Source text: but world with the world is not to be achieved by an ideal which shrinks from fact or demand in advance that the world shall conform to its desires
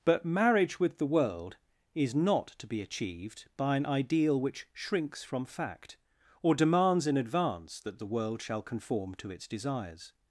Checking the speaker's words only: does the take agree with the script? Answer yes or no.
no